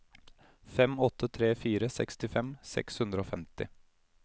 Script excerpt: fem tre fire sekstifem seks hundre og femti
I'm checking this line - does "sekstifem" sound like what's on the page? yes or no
yes